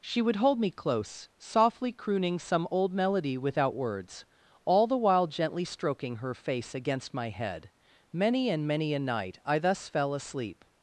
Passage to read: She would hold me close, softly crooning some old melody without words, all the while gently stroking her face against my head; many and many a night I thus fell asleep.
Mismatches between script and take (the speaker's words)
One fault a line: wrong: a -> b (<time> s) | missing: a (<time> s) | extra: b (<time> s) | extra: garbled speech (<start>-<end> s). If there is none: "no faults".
no faults